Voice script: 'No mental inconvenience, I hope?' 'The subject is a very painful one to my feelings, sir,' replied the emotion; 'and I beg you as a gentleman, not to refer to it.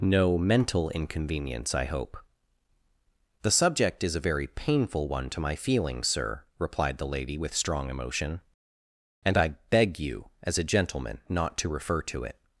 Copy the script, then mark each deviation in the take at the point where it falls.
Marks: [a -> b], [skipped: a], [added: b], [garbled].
'No mental inconvenience, I hope?' 'The subject is a very painful one to my feelings, sir,' replied the [added: lady with strong] emotion; 'and I beg you as a gentleman, not to refer to it.